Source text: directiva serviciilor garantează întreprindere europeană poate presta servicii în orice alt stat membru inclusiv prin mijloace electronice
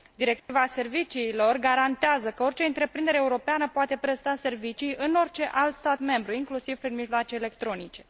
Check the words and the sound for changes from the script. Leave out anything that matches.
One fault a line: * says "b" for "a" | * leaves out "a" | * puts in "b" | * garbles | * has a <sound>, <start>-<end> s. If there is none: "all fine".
* has a dropout, 0.4-0.5 s
* puts in "că orice"